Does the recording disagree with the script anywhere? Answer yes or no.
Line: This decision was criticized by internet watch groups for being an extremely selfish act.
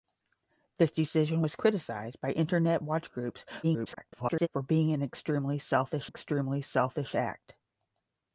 yes